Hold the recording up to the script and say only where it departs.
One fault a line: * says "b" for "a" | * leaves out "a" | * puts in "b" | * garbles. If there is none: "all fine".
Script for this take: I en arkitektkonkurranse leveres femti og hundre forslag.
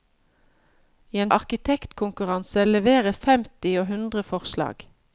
all fine